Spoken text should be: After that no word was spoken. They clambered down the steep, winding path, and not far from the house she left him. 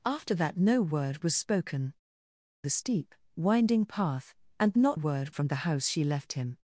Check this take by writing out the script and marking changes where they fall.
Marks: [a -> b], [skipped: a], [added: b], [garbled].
After that no word was spoken. [skipped: They clambered down] the steep, winding path, and not [far -> word] from the house she left him.